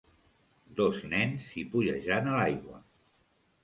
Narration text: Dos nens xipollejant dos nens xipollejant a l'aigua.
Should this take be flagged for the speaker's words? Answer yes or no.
yes